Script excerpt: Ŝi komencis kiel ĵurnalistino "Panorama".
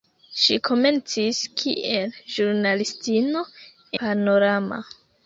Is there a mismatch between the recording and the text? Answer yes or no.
no